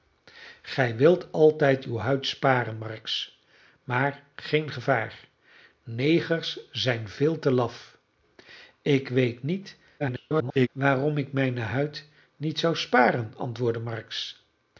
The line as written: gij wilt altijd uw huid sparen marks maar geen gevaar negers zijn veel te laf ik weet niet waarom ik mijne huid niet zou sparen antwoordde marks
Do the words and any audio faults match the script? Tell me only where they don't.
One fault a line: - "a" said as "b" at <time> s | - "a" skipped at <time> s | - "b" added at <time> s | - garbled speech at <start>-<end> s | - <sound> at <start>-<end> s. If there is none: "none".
- garbled speech at 10.0-10.7 s